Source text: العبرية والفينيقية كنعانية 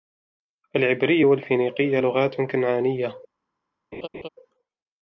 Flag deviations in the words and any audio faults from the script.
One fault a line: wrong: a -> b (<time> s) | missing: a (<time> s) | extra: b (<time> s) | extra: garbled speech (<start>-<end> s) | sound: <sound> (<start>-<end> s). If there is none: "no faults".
extra: لغات (2.0 s)
sound: laugh (3.9-4.3 s)